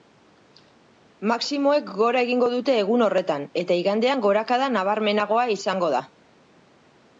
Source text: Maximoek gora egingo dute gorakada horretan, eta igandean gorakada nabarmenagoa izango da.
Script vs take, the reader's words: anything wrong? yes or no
yes